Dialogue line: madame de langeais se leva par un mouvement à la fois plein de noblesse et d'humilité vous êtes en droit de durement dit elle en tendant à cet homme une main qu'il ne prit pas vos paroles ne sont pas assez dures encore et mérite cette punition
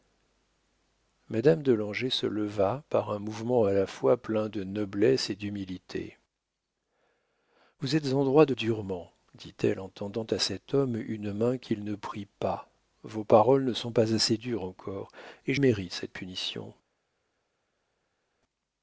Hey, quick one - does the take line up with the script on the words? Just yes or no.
yes